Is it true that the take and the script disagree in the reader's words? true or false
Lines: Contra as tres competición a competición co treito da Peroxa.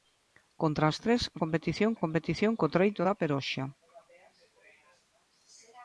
false